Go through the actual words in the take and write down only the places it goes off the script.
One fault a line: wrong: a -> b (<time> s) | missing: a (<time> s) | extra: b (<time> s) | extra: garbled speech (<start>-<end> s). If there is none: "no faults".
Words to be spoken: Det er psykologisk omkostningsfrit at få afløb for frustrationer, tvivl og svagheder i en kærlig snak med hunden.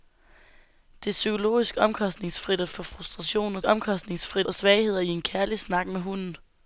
missing: få afløb (2.7 s)
wrong: tvivl -> omkostningsfrit (3.6 s)